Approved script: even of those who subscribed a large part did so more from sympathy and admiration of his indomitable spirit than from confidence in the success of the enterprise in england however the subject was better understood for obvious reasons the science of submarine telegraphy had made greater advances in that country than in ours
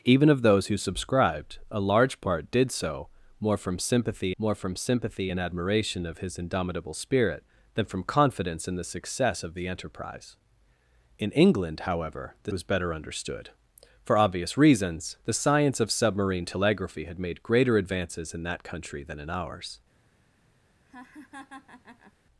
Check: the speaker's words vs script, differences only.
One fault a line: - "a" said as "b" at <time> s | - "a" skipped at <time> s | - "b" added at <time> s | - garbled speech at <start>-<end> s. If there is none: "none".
- "more from sympathy" added at 4.4 s
- "subject" skipped at 12.5 s